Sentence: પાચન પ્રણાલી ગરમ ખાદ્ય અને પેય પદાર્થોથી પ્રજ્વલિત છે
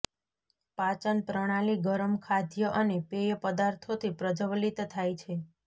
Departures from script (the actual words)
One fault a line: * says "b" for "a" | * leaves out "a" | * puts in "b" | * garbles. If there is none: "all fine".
* puts in "થાય"